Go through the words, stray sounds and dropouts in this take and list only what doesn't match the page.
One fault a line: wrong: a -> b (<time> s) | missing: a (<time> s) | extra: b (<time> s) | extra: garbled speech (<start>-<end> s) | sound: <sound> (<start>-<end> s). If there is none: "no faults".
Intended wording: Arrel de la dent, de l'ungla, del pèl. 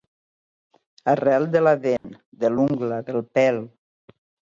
sound: dropout (2.0-2.0 s)